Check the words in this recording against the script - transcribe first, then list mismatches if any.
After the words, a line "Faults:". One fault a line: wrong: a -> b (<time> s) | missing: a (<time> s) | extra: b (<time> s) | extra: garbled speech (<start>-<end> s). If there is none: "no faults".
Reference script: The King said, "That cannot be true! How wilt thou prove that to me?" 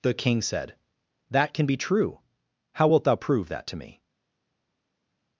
The King said, "That can be true! How wilt thou prove that to me?"
Faults:
wrong: cannot -> can (1.5 s)